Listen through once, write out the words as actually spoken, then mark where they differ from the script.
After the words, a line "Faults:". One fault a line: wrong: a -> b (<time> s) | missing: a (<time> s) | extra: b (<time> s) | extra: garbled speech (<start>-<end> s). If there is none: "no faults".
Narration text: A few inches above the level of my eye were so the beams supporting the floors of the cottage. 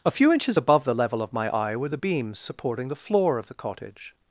A few inches above the level of my eye were the beams supporting the floor of the cottage.
Faults:
missing: so (1.9 s)
wrong: floors -> floor (2.9 s)